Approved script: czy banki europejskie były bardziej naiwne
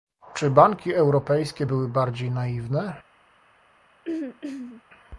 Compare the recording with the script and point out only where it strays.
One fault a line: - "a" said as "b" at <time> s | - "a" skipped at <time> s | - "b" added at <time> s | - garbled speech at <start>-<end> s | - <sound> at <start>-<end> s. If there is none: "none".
- throat clearing at 4.0-4.8 s